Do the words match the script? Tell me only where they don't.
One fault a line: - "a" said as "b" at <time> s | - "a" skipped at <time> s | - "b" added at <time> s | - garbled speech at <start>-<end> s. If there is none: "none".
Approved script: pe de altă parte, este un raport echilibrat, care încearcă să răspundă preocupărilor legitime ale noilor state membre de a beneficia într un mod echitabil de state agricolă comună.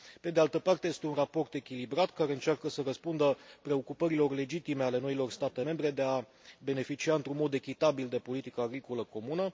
- "state" said as "politica" at 8.2 s